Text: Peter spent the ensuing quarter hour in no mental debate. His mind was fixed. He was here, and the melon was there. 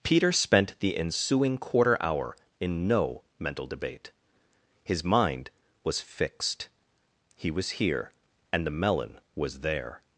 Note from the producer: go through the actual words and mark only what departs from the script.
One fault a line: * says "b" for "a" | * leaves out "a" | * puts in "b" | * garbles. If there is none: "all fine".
all fine